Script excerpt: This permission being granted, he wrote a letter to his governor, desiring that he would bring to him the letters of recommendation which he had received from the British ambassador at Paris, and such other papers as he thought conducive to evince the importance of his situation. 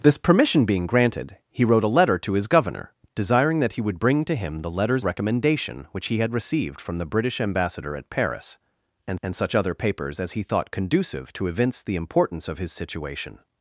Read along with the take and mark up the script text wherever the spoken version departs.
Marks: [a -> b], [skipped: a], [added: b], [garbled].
This permission being granted, he wrote a letter to his governor, desiring that he would bring to him the letters [skipped: of] recommendation which he had received from the British ambassador at Paris, and [added: and] such other papers as he thought conducive to evince the importance of his situation.